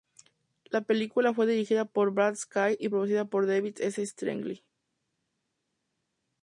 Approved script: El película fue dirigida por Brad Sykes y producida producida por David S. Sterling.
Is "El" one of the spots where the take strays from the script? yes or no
yes